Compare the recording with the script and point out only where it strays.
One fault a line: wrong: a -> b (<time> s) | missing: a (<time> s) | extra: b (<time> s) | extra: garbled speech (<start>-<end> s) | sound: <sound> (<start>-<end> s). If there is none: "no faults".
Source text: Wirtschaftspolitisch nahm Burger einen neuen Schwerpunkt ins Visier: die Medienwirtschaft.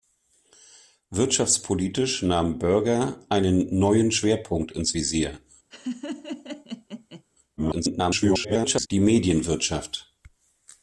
sound: laugh (5.7-7.2 s)
extra: garbled speech (7.6-8.9 s)